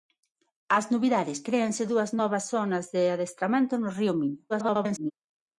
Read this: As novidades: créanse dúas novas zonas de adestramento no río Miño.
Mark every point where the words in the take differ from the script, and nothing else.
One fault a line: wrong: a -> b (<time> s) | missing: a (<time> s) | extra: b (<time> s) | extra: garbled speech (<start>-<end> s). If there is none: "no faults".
extra: garbled speech (4.5-5.1 s)